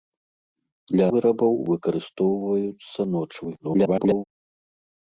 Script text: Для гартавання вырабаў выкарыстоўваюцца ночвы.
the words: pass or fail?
fail